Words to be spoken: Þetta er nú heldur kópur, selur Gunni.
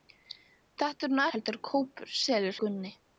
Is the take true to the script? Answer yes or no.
yes